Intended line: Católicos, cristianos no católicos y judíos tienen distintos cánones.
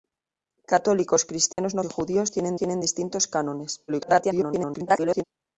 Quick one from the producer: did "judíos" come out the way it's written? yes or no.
yes